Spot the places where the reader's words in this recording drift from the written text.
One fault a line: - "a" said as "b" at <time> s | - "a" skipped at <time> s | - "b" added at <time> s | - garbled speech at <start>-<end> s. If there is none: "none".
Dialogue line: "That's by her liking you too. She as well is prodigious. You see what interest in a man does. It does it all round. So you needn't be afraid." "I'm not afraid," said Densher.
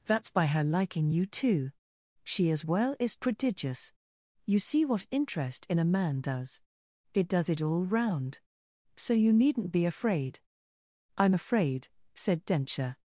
- "not" skipped at 11.3 s